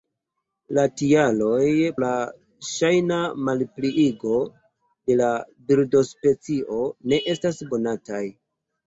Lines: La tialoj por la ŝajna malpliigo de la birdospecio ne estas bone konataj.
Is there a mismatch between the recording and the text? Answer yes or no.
yes